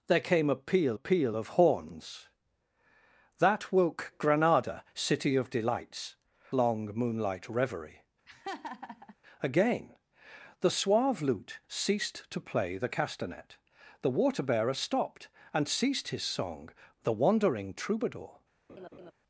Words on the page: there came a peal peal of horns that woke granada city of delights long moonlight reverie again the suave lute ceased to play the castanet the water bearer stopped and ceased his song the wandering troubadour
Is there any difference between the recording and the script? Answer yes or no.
no